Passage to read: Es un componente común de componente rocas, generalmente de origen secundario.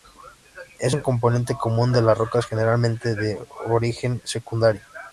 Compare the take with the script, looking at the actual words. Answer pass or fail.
fail